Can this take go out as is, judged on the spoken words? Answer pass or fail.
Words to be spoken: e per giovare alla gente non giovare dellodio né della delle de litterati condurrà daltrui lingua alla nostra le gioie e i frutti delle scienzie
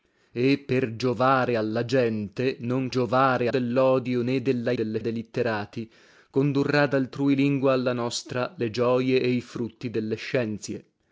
pass